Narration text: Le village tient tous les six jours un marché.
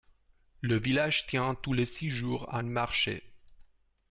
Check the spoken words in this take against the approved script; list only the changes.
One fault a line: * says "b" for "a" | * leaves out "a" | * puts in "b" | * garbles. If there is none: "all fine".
all fine